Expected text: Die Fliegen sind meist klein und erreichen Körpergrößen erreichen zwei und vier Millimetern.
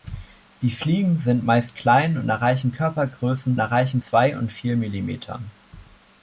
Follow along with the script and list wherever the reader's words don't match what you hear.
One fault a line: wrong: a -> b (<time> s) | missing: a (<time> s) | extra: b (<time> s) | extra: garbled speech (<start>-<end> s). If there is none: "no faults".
no faults